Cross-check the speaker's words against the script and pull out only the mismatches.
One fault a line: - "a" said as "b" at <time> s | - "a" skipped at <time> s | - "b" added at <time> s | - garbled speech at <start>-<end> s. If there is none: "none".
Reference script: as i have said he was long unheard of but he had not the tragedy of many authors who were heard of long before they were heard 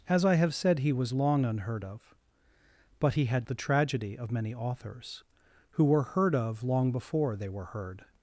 - "not" skipped at 3.5 s